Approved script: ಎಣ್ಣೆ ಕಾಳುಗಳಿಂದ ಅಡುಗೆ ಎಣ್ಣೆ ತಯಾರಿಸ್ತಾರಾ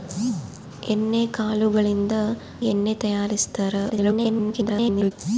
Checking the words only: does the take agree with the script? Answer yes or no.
no